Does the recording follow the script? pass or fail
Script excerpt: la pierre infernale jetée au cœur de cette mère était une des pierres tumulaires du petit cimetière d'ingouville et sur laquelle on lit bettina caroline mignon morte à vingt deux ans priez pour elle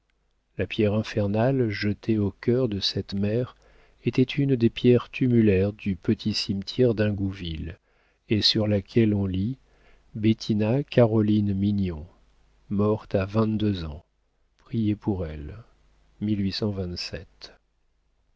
pass